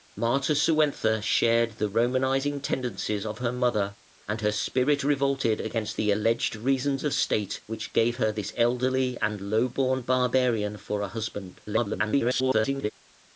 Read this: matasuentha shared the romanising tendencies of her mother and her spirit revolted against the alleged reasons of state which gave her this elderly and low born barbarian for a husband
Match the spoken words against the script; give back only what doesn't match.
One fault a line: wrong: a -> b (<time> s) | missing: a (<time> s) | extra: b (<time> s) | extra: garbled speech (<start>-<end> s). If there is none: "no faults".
extra: garbled speech (11.7-12.9 s)